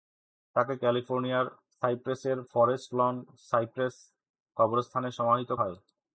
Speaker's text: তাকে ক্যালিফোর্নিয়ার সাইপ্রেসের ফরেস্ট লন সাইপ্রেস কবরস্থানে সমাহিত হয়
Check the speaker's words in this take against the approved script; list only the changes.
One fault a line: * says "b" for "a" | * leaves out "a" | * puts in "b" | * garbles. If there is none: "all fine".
all fine